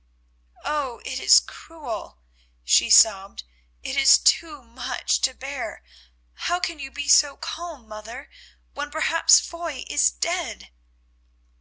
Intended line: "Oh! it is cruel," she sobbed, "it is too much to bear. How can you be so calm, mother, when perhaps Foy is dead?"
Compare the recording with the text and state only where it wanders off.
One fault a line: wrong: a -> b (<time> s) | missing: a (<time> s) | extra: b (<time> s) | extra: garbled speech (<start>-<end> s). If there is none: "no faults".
no faults